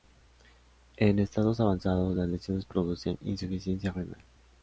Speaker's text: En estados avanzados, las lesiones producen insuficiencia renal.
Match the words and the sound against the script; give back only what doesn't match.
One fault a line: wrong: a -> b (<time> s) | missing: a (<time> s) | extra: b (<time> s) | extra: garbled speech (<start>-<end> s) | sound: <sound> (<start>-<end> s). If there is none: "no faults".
no faults